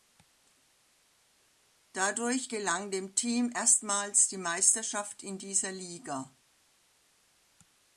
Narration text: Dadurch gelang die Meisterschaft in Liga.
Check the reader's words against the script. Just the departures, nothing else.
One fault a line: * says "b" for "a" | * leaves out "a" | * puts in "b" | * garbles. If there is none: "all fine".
* puts in "dem Team erstmals"
* puts in "dieser"